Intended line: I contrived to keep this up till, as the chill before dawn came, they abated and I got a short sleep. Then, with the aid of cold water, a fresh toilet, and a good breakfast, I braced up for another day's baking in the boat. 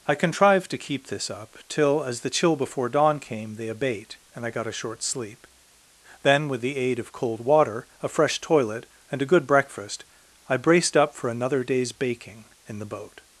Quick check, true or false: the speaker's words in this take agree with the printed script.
false